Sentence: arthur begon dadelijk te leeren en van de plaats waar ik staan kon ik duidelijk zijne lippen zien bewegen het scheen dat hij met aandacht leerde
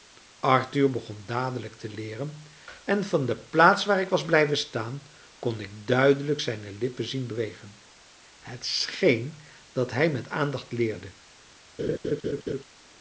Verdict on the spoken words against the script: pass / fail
fail